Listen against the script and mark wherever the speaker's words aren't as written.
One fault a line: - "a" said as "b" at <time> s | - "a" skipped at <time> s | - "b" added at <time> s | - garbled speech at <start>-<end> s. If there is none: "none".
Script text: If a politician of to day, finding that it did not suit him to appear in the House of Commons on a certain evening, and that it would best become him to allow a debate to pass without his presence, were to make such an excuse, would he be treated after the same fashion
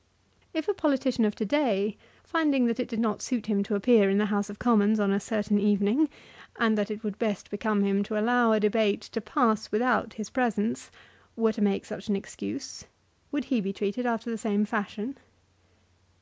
none